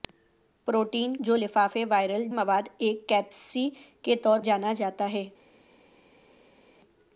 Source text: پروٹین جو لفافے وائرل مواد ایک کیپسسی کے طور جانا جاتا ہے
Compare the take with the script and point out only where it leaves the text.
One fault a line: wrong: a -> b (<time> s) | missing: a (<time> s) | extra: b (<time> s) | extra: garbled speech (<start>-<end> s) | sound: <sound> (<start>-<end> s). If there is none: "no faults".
no faults